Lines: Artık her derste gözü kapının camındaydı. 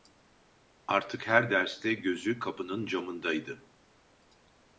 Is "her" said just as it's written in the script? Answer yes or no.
yes